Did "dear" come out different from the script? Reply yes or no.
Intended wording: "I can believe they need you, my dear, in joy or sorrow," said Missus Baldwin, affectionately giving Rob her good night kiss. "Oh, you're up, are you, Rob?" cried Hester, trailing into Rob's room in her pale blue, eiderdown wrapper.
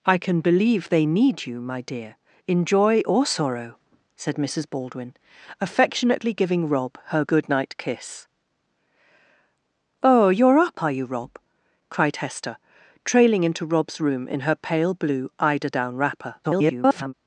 no